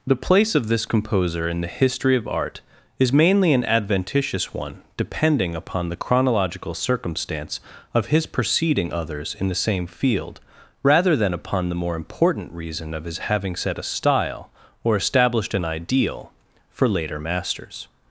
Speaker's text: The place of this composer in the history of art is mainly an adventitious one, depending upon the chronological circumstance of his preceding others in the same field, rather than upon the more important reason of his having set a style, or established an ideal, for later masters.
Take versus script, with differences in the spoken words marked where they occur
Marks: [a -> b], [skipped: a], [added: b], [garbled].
The place of this composer in the history of art is mainly an adventitious one, depending upon the chronological circumstance of his preceding others in the same field, rather than upon the more important reason of his having set a style, or established an ideal, for later masters.